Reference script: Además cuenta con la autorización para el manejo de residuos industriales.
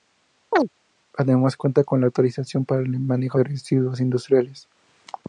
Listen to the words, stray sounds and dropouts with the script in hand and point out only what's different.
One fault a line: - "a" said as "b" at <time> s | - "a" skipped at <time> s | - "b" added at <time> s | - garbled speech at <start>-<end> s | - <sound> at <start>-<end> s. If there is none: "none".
- chirp at 0.5-0.7 s